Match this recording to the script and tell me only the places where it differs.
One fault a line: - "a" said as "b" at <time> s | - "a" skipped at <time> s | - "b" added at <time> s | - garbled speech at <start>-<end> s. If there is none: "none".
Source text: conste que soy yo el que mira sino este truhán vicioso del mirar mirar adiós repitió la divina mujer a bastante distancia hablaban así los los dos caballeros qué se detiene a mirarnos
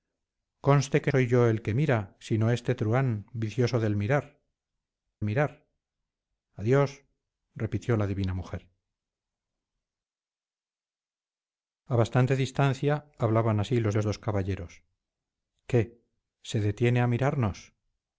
none